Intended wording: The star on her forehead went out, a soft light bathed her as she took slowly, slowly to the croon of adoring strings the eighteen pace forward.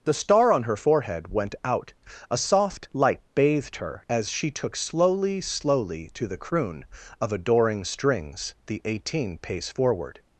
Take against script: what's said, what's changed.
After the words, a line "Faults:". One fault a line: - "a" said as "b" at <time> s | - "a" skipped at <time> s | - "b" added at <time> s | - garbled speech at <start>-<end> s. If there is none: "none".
The star on her forehead went out, a soft light bathed her as she took slowly, slowly to the croon of adoring strings the eighteen pace forward.
Faults:
none